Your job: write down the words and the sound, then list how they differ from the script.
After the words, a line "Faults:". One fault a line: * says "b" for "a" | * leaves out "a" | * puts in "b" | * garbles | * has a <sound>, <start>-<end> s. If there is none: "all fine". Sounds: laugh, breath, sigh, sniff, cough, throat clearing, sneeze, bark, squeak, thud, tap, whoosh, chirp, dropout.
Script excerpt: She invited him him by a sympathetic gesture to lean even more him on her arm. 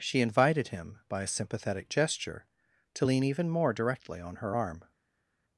She invited him by a sympathetic gesture to lean even more directly on her arm.
Faults:
* leaves out "him"
* says "directly" for "him"